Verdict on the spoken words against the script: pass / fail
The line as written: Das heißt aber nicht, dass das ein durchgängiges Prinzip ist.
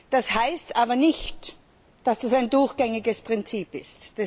pass